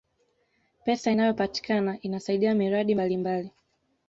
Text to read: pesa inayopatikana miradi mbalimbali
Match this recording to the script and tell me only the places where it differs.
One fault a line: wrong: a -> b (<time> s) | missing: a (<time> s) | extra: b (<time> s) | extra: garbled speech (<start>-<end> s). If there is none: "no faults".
extra: inasaidia (2.0 s)